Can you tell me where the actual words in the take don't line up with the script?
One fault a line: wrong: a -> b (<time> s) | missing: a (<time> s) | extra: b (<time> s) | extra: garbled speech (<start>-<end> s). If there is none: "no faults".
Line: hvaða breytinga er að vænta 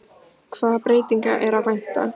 no faults